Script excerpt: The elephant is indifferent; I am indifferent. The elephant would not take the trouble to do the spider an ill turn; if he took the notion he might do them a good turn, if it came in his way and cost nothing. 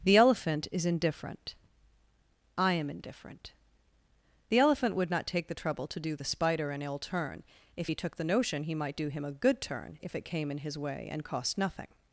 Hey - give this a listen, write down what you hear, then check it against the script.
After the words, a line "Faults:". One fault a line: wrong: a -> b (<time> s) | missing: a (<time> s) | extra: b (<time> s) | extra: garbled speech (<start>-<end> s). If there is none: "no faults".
The elephant is indifferent; I am indifferent. The elephant would not take the trouble to do the spider an ill turn; if he took the notion he might do him a good turn, if it came in his way and cost nothing.
Faults:
wrong: them -> him (9.1 s)